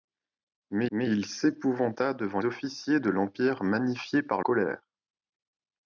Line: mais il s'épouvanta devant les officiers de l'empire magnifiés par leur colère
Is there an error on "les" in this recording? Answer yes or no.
yes